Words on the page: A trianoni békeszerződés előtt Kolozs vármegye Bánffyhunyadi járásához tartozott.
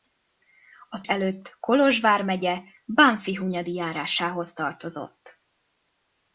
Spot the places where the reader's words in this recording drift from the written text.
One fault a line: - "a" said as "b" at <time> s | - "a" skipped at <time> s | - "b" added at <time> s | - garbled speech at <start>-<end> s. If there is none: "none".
- "trianoni békeszerződés" skipped at 1.0 s